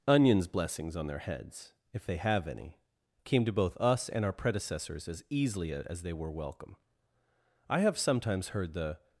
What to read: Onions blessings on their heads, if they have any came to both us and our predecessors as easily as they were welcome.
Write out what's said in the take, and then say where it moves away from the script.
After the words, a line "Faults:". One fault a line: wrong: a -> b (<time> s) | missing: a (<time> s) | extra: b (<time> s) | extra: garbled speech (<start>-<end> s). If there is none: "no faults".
Onions blessings on their heads, if they have any came to both us and our predecessors as easily as they were welcome. I have sometimes heard the
Faults:
extra: I have sometimes heard the (7.7 s)